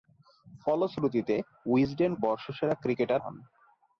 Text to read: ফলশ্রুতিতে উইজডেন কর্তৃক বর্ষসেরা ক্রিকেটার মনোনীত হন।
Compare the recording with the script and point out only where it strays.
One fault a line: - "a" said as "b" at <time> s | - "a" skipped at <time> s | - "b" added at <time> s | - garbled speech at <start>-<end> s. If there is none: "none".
- "কর্তৃক" skipped at 2.1 s
- "মনোনীত" skipped at 3.2 s